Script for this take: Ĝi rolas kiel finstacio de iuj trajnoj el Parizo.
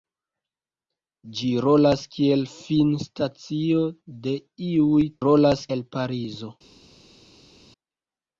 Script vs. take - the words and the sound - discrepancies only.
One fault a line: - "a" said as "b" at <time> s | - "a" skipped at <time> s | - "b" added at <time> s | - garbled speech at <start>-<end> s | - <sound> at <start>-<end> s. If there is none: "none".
- "trajnoj" said as "rolas" at 5.2 s